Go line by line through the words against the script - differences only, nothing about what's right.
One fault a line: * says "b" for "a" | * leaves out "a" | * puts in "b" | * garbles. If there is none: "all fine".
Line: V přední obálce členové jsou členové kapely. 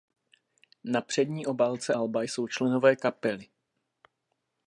* says "Na" for "V"
* says "alba" for "členové"